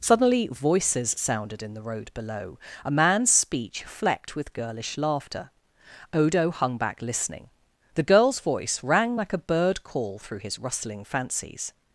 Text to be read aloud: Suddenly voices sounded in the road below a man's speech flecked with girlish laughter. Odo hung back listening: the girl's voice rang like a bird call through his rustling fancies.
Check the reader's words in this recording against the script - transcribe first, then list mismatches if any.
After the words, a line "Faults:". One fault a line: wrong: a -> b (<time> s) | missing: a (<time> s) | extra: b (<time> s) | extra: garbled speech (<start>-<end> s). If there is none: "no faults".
Suddenly voices sounded in the road below a man's speech flecked with girlish laughter. Odo hung back listening: the girl's voice rang like a bird call through his rustling fancies.
Faults:
no faults